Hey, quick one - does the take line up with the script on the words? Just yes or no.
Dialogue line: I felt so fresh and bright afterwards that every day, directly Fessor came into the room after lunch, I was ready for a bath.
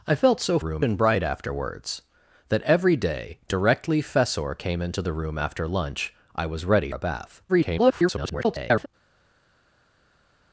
no